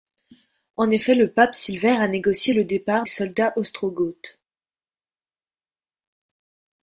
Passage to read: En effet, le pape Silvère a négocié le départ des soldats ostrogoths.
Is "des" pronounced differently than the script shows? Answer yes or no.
yes